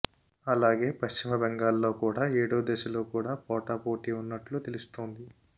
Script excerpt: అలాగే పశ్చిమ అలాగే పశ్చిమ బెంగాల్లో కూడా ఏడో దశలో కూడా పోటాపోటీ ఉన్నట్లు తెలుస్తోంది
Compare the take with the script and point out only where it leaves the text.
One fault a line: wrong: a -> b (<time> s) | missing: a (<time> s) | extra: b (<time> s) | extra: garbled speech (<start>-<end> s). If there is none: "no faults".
missing: అలాగే పశ్చిమ (1.3 s)